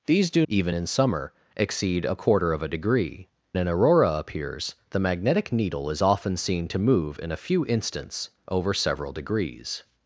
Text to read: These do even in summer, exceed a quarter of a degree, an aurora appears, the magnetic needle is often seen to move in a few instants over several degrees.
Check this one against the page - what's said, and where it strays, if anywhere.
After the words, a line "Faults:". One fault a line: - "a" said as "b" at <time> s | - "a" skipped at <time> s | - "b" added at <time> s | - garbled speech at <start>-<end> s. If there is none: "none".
These do even in summer, exceed a quarter of a degree, an aurora appears, the magnetic needle is often seen to move in a few instants over several degrees.
Faults:
none